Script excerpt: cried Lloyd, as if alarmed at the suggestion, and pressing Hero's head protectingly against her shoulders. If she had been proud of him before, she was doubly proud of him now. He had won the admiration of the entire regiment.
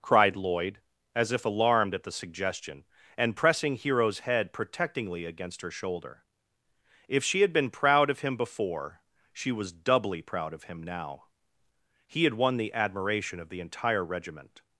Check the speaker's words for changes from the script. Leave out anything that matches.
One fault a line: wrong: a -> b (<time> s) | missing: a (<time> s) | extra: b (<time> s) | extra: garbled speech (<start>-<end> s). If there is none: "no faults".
wrong: shoulders -> shoulder (5.7 s)